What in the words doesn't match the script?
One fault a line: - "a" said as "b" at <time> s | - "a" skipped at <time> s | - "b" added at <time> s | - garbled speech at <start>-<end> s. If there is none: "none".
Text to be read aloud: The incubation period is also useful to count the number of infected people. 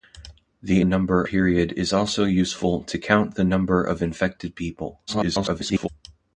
- "incubation" said as "number" at 0.8 s
- garbled speech at 5.1-5.9 s